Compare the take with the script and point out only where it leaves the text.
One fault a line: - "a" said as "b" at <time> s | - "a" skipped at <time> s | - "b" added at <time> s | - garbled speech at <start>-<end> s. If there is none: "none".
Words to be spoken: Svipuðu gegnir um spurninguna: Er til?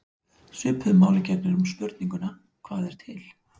- "máli" added at 1.0 s
- "Hvað" added at 2.7 s